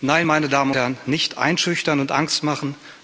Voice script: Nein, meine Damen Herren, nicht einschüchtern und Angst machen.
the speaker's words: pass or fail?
pass